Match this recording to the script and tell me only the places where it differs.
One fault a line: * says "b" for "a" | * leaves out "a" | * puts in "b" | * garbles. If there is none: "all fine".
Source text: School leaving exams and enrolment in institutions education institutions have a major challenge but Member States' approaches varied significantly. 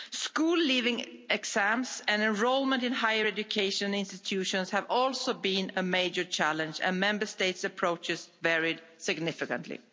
* says "higher" for "institutions"
* puts in "also been"
* says "and" for "but"